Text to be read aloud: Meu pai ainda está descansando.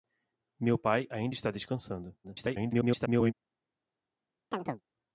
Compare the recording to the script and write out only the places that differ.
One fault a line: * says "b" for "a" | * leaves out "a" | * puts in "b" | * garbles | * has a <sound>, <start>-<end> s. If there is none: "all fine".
* garbles
* has a chirp, 4.5-4.8 s